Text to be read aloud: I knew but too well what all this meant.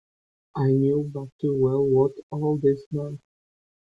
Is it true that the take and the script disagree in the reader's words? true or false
false